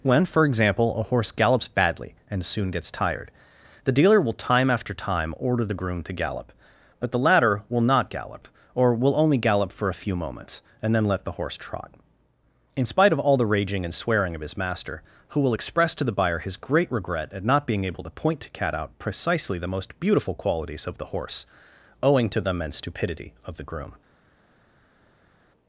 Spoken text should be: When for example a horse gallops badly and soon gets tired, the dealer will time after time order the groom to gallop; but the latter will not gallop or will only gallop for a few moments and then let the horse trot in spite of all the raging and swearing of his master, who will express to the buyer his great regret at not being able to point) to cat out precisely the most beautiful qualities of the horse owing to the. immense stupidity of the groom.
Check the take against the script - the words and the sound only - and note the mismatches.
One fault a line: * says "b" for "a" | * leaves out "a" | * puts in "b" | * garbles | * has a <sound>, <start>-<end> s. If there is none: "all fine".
all fine